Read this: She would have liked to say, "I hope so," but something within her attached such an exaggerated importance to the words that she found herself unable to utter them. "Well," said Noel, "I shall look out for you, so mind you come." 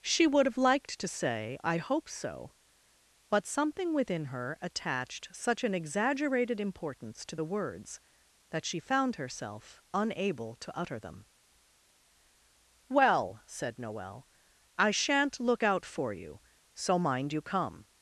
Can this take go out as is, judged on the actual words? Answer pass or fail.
fail